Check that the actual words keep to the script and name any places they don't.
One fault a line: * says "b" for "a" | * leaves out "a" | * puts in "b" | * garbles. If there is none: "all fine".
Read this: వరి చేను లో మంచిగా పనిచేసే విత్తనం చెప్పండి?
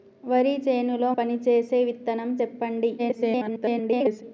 * leaves out "మంచిగా"
* garbles